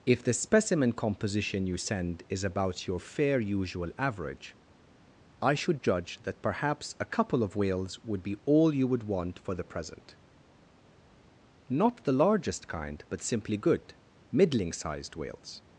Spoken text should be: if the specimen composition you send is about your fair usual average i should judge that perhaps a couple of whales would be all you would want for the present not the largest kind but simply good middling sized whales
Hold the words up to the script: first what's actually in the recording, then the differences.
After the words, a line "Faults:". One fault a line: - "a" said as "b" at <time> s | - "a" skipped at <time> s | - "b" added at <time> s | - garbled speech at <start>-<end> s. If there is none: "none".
if the specimen composition you send is about your fair usual average i should judge that perhaps a couple of whales would be all you would want for the present not the largest kind but simply good middling sized whales
Faults:
none